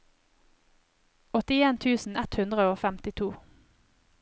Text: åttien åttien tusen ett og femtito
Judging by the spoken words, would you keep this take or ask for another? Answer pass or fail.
fail